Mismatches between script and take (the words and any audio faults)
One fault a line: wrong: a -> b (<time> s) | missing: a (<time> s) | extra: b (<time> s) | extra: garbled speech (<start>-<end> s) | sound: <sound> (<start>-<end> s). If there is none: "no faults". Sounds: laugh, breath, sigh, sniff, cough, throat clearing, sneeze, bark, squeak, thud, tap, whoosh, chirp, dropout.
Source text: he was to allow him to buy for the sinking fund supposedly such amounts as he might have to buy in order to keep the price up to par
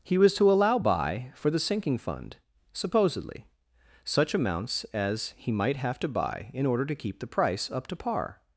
missing: him to (0.8 s)